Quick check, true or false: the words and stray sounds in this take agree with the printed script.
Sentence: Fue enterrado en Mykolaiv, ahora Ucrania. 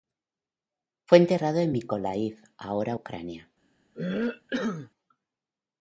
false